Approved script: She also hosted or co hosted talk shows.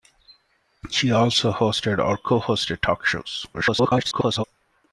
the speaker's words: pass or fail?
fail